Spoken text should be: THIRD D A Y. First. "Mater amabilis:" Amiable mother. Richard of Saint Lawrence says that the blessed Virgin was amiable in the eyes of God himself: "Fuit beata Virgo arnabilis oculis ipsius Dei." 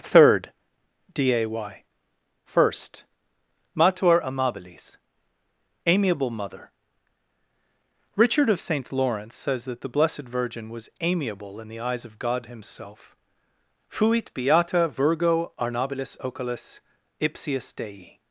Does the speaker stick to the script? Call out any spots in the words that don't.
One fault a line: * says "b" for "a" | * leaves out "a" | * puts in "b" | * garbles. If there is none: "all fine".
all fine